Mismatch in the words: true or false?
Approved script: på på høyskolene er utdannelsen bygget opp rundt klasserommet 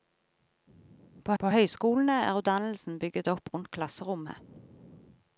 false